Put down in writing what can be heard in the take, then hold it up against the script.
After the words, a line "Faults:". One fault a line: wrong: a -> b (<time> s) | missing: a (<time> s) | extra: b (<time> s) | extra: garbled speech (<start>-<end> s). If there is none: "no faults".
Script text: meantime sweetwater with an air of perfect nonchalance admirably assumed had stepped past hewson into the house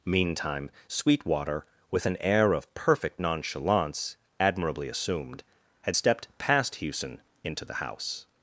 meantime sweetwater with an air of perfect nonchalance admirably assumed had stepped past hewson into the house
Faults:
no faults